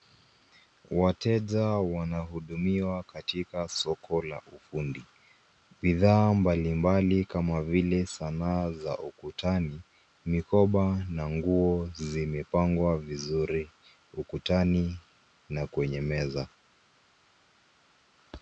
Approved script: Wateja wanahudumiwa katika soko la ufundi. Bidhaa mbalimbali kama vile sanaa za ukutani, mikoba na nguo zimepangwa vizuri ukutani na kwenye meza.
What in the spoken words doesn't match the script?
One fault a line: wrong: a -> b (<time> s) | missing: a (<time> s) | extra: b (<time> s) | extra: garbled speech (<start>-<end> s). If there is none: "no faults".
no faults